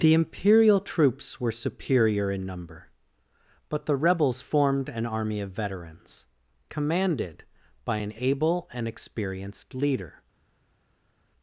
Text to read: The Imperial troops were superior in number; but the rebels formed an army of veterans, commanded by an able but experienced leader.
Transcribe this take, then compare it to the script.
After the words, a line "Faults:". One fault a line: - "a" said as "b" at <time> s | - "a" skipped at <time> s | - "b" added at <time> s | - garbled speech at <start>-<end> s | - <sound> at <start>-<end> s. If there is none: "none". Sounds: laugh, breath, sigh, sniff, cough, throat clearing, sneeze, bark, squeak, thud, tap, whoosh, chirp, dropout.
The Imperial troops were superior in number; but the rebels formed an army of veterans, commanded by an able and experienced leader.
Faults:
- "but" said as "and" at 8.7 s